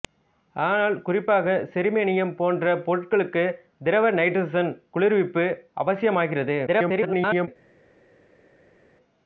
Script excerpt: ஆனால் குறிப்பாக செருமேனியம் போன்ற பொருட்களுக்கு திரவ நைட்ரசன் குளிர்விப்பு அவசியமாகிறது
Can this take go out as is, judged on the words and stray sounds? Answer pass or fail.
fail